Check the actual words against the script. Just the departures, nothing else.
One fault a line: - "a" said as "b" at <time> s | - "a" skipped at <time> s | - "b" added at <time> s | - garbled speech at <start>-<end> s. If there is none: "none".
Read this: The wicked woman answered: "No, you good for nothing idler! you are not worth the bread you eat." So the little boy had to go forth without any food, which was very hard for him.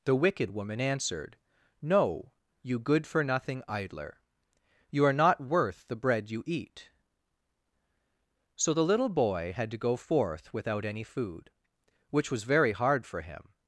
none